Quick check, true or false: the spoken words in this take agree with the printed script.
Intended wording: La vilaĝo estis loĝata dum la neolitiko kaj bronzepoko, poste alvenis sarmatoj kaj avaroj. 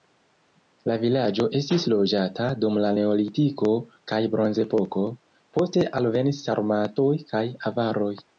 true